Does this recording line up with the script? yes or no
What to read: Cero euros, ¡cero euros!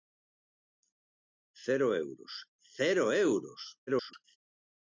no